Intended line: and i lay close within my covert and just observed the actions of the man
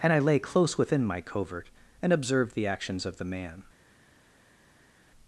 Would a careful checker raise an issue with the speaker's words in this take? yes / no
yes